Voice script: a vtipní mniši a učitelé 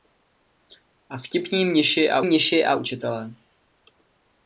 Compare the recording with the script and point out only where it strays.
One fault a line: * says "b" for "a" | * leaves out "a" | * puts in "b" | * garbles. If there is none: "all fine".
* puts in "mniši a"